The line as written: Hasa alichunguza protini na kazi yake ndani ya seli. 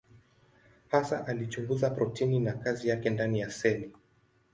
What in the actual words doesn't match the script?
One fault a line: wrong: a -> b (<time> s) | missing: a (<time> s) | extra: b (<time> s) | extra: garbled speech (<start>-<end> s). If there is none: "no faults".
no faults